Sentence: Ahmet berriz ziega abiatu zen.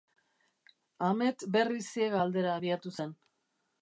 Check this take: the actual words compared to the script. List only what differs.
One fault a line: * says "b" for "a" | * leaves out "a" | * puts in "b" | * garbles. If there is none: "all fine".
* puts in "aldera"